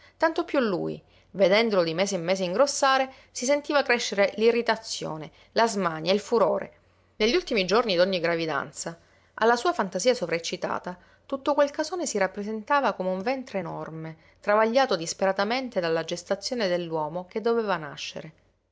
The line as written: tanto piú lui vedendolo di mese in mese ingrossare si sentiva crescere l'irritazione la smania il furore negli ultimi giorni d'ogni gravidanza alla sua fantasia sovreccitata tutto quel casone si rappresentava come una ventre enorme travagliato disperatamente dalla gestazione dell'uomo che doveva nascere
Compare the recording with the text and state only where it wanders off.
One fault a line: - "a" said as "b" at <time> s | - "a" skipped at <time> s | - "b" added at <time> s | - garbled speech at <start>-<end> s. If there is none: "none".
- "una" said as "un" at 13.1 s